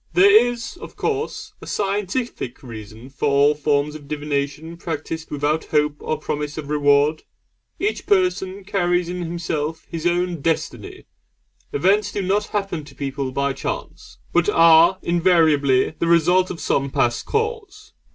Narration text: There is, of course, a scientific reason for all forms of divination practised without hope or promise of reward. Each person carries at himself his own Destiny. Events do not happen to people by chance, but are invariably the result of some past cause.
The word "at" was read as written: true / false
false